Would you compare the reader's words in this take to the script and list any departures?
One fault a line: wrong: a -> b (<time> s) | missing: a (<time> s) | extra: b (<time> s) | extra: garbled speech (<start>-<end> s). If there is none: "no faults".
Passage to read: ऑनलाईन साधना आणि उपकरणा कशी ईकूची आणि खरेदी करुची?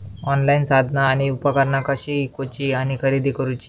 no faults